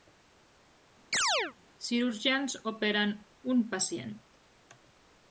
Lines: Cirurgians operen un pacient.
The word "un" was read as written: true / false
true